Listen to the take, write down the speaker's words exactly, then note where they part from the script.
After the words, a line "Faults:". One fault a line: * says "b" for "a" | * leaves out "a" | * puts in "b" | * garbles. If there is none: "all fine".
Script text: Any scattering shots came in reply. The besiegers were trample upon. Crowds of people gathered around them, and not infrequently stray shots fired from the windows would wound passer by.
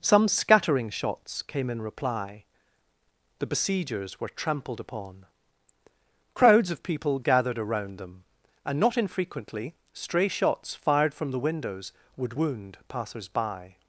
Some scattering shots came in reply. The besiegers were trampled upon. Crowds of people gathered around them, and not infrequently stray shots fired from the windows would wound passers by.
Faults:
* says "Some" for "Any"
* says "trampled" for "trample"
* says "passers" for "passer"